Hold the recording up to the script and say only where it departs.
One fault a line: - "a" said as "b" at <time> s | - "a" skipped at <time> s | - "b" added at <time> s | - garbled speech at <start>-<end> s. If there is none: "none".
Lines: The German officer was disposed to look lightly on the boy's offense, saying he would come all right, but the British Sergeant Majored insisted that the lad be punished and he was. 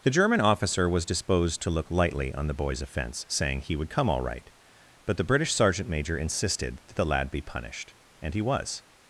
- "Majored" said as "Major" at 5.9 s